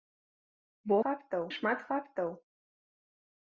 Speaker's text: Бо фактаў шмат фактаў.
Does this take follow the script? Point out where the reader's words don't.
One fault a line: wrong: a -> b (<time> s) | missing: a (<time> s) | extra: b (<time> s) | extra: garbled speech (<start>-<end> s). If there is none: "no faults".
no faults